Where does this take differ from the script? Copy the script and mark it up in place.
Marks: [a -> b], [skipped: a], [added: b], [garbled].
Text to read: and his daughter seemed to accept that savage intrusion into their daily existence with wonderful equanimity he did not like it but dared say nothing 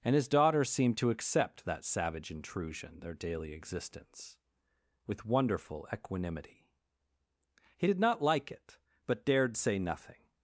and his daughter seemed to accept that savage intrusion [skipped: into] their daily existence with wonderful equanimity he did not like it but dared say nothing